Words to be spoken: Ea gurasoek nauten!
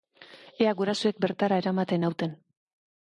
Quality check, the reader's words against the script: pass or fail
fail